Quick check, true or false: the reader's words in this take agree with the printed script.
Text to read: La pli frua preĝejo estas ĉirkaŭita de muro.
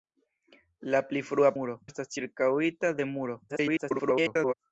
false